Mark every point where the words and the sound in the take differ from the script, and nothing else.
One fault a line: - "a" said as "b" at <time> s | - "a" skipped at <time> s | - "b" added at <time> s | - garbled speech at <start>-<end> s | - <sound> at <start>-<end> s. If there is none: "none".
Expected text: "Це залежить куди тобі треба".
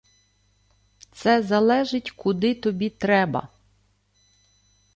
none